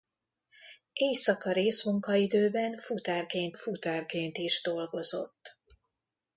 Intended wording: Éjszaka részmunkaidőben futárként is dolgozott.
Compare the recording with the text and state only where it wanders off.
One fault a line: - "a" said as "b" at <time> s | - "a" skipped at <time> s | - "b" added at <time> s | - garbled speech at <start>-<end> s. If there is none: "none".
- "futárként" added at 3.5 s